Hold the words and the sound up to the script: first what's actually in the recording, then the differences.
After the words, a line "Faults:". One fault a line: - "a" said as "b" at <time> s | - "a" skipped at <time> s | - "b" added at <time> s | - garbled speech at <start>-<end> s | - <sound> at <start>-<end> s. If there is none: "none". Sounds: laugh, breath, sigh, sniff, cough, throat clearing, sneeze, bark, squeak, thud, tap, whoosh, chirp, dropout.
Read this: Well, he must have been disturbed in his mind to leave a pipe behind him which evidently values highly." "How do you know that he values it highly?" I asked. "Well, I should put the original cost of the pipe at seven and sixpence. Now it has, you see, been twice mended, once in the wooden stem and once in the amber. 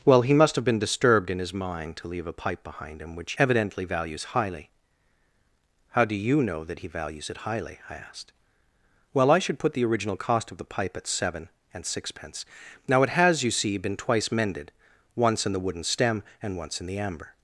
Well, he must have been disturbed in his mind to leave a pipe behind him which evidently values highly." "How do you know that he values it highly?" I asked. "Well, I should put the original cost of the pipe at seven and sixpence. Now it has, you see, been twice mended, once in the wooden stem and once in the amber.
Faults:
none